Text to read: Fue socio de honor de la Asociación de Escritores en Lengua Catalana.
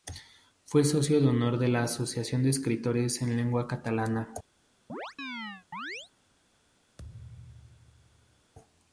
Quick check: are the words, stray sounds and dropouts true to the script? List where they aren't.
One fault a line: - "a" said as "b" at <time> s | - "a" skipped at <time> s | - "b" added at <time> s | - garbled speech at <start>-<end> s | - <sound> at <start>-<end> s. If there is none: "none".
- chirp at 4.9-6.1 s
- thud at 7.0-8.5 s